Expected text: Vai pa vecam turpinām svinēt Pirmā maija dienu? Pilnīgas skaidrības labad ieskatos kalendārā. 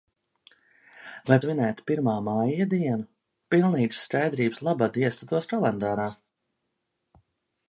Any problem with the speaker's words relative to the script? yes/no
yes